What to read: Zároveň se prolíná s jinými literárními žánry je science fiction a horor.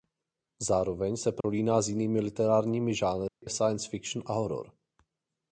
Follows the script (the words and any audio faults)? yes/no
no